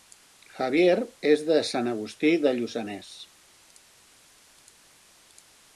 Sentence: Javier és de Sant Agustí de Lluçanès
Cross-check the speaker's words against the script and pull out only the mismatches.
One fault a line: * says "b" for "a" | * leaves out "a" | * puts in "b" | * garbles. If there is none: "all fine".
all fine